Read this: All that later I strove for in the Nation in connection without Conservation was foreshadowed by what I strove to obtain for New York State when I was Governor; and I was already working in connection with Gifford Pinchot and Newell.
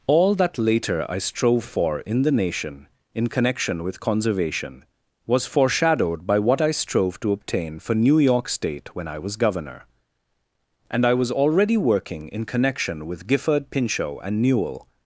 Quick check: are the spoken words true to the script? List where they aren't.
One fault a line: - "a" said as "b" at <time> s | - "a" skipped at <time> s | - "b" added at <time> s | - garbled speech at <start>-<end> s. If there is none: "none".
- "without" said as "with" at 3.8 s